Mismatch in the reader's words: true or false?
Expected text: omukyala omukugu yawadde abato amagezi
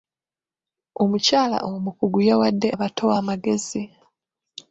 false